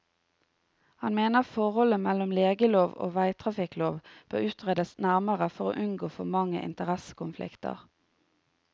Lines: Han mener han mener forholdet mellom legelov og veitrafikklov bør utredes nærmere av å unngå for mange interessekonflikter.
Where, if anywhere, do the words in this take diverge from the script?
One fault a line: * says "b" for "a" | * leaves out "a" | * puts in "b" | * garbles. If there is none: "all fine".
* leaves out "han mener"
* says "for" for "av"